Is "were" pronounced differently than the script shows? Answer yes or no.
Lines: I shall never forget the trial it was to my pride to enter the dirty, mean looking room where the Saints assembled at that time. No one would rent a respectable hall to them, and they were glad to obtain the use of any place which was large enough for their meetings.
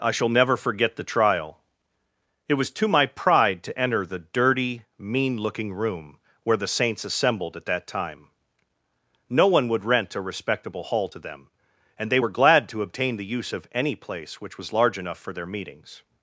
no